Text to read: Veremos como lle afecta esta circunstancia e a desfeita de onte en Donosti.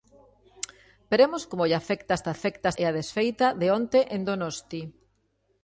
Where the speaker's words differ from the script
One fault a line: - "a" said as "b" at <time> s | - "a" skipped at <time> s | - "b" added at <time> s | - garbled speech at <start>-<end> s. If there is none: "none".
- "circunstancia" said as "afecta" at 2.4 s